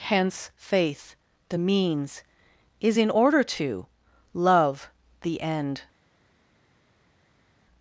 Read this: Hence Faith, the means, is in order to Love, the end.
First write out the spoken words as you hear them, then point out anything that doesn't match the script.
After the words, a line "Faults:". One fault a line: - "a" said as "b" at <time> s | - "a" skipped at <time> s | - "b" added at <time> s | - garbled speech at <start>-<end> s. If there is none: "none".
Hence Faith, the means, is in order to Love, the end.
Faults:
none